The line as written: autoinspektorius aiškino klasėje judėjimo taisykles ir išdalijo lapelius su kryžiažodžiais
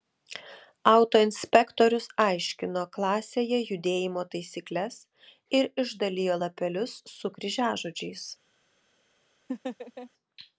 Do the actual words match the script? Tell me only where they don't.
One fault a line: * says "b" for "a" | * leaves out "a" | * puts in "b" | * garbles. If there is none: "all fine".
all fine